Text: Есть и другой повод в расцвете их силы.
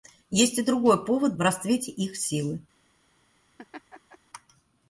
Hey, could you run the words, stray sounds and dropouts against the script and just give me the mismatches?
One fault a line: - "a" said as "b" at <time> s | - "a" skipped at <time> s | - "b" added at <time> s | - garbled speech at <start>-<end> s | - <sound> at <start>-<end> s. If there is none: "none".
- laugh at 3.6-4.2 s